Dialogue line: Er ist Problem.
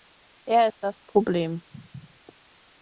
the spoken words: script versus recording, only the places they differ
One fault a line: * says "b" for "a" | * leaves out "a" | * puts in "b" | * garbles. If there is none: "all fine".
* puts in "das"